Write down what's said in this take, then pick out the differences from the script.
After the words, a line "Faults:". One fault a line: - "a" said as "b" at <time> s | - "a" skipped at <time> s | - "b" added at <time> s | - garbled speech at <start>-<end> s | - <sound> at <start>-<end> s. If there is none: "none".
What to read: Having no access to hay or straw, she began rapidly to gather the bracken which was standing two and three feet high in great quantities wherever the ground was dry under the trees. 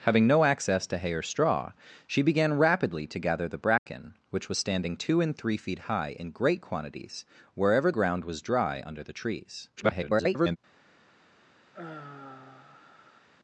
Having no access to hay or straw, she began rapidly to gather the bracken which was standing two and three feet high in great quantities wherever ground was dry under the trees. [garbled]
Faults:
- dropout at 3.8-3.9 s
- "the" skipped at 7.9 s
- garbled speech at 9.8-10.6 s
- sigh at 11.7-13.3 s